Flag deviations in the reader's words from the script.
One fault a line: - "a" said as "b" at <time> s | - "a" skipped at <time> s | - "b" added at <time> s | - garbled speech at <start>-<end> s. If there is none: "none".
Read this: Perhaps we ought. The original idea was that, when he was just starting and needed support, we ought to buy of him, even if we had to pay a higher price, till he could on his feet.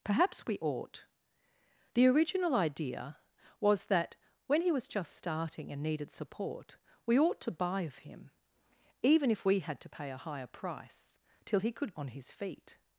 none